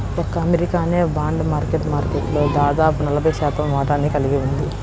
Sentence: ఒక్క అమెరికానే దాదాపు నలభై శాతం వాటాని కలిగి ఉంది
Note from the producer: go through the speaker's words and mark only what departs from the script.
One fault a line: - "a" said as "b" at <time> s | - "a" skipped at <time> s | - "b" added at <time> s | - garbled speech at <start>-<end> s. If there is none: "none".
- "బాండ్ మార్కెట్ మార్కెట్లో" added at 1.1 s